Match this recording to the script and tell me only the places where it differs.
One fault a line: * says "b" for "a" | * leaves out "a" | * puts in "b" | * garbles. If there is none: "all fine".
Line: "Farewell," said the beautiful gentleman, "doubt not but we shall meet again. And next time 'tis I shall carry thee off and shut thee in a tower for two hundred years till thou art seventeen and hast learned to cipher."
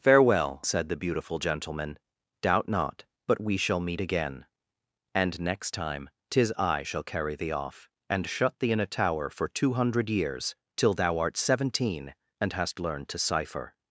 all fine